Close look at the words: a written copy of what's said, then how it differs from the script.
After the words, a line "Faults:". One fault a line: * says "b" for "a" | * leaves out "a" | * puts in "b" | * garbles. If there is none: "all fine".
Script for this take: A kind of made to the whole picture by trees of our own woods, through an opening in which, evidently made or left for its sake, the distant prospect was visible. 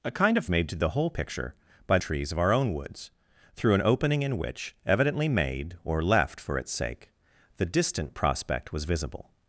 A kind of made to the whole picture by trees of our own woods, through an opening in which, evidently made or left for its sake, the distant prospect was visible.
Faults:
all fine